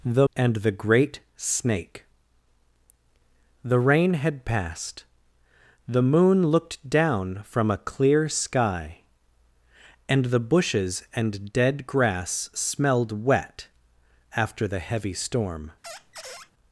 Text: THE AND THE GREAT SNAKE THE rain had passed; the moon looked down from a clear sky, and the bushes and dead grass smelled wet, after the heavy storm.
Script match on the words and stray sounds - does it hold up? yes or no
no